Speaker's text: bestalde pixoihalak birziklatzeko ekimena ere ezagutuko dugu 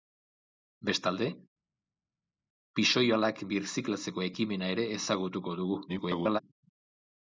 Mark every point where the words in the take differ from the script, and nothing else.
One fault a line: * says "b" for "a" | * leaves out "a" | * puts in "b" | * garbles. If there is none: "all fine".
* garbles